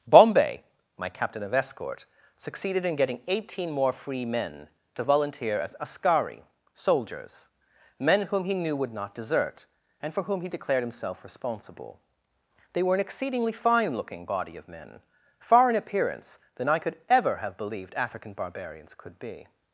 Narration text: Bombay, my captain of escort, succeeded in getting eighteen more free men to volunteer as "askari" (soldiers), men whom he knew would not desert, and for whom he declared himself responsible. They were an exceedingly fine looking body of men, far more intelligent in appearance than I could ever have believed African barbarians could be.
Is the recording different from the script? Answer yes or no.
yes